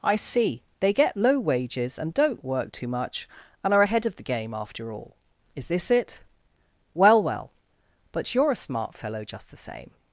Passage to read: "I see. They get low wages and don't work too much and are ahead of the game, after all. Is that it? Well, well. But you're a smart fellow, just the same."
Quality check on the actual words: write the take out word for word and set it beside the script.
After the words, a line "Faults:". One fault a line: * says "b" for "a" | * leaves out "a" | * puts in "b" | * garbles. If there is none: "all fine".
"I see. They get low wages and don't work too much and are ahead of the game, after all. Is this it? Well, well. But you're a smart fellow, just the same."
Faults:
* says "this" for "that"